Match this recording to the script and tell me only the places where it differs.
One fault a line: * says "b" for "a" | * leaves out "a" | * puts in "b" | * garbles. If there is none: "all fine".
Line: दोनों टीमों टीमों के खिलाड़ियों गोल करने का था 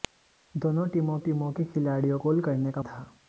all fine